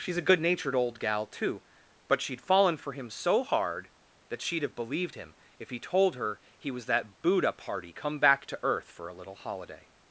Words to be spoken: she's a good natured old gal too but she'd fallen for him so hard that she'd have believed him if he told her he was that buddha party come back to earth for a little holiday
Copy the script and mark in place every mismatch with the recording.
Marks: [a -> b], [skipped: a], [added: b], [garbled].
she's a good natured old gal too but she'd fallen for him so hard that she'd have believed him if he told her he was that buddha party come back to earth for a little holiday